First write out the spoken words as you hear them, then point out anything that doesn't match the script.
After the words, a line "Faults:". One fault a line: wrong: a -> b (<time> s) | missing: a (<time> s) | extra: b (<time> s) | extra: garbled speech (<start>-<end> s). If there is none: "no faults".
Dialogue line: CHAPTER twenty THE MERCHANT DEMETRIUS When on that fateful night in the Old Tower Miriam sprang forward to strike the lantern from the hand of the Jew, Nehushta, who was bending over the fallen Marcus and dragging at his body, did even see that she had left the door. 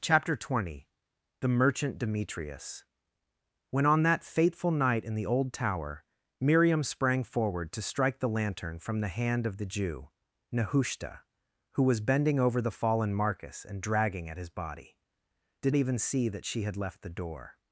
CHAPTER twenty THE MERCHANT DEMETRIUS When on that fateful night in the Old Tower Miriam sprang forward to strike the lantern from the hand of the Jew, Nehushta, who was bending over the fallen Marcus and dragging at his body, did even see that she had left the door.
Faults:
no faults